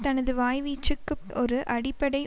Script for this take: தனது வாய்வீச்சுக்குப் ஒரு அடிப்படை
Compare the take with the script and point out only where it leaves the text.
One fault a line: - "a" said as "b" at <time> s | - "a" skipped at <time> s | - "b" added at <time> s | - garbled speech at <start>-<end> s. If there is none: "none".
none